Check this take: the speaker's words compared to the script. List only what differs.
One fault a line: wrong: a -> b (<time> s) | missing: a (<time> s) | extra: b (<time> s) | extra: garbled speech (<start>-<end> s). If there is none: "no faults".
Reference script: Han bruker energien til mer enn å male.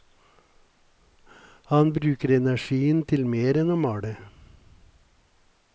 no faults